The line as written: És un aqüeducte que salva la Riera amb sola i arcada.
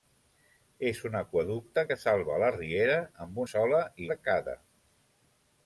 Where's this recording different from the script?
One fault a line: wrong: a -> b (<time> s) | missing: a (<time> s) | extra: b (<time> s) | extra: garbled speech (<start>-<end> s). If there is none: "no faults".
no faults